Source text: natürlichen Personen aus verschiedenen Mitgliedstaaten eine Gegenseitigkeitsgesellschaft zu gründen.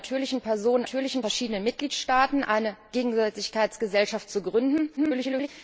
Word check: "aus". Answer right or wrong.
wrong